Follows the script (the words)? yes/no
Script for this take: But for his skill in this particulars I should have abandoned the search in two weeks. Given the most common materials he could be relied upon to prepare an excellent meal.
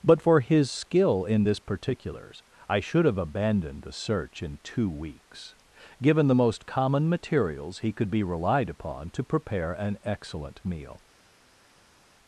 yes